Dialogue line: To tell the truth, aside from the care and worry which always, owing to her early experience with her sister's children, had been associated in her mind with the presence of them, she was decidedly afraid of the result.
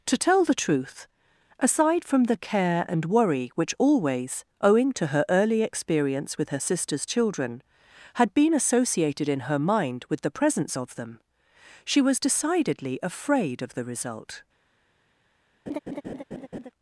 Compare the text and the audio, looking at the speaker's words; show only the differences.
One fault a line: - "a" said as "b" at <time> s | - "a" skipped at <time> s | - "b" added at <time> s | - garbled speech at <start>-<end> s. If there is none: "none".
none